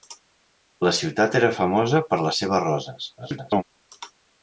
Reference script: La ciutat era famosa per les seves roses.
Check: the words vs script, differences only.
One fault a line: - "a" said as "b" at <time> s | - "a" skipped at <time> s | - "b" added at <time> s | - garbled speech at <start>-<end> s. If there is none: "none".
- garbled speech at 3.2-3.6 s